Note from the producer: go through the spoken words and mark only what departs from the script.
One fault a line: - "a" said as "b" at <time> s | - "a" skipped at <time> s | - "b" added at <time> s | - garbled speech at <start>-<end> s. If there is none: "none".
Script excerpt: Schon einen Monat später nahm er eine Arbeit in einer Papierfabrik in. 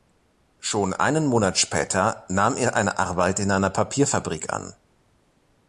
- "in" said as "an" at 4.5 s